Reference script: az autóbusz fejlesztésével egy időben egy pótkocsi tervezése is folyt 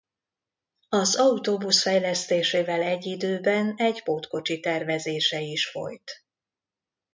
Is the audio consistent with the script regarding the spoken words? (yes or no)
yes